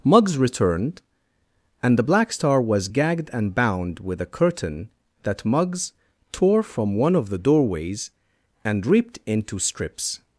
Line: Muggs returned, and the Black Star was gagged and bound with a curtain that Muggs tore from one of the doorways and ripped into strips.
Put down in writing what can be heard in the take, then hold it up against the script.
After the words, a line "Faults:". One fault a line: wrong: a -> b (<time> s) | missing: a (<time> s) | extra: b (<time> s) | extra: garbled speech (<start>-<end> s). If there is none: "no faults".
Muggs returned, and the Black Star was gagged and bound with a curtain that Muggs tore from one of the doorways and ripped into strips.
Faults:
no faults